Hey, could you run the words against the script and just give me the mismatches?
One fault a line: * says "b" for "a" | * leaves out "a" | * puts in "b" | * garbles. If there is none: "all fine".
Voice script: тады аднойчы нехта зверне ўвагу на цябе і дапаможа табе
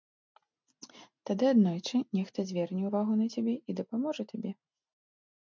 all fine